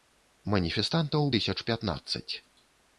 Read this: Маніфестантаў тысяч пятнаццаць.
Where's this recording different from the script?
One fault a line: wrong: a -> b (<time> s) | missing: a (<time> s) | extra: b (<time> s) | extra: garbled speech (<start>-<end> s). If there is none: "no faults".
no faults